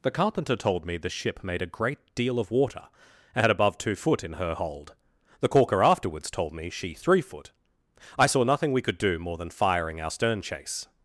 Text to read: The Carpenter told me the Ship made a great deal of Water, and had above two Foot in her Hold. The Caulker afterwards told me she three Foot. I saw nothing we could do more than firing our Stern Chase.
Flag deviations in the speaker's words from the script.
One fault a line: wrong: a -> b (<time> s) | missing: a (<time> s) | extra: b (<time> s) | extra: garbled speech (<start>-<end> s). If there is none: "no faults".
no faults